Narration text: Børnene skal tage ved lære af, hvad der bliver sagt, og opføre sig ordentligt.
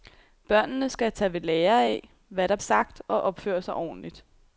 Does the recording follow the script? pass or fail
fail